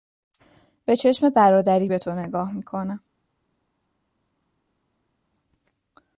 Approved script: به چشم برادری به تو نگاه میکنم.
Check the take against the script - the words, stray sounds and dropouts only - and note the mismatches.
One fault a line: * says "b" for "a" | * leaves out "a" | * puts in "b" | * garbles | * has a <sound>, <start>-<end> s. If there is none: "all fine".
all fine